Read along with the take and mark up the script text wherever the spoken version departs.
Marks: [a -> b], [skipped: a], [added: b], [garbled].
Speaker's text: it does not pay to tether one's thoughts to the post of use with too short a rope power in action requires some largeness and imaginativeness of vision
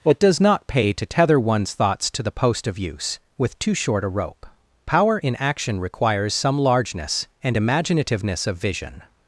it does not pay to tether one's thoughts to the post of use with too short a rope power in action requires some largeness and imaginativeness of vision